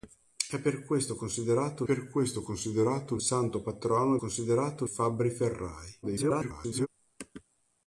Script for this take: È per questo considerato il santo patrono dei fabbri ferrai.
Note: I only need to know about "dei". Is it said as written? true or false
false